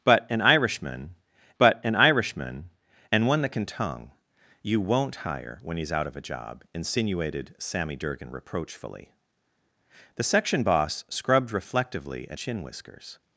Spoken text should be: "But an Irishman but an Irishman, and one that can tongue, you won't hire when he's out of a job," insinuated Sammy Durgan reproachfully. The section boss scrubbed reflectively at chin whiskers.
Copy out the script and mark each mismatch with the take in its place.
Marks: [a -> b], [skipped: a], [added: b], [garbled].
"But an Irishman but an Irishman, and one that can tongue, you won't hire when he's out of a job," insinuated Sammy Durgan reproachfully. The section boss scrubbed reflectively at chin whiskers.